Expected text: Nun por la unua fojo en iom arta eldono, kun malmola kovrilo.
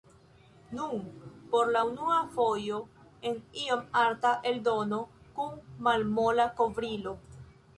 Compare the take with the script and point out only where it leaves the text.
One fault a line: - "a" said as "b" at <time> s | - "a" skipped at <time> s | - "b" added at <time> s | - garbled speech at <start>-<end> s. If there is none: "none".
none